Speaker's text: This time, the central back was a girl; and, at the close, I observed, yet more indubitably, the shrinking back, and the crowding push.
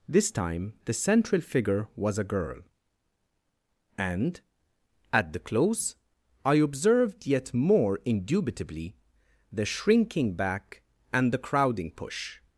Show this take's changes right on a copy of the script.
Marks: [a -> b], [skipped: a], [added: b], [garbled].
This time, the central [back -> figure] was a girl; and, at the close, I observed, yet more indubitably, the shrinking back, and the crowding push.